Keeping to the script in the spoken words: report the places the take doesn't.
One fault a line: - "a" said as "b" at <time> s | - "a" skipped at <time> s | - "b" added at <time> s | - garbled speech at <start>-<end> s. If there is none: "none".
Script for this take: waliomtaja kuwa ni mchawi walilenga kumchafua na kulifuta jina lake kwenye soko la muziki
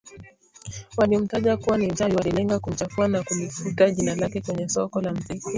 none